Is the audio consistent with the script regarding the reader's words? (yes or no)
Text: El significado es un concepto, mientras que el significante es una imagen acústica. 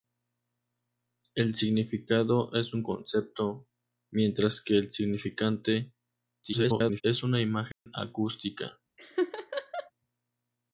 no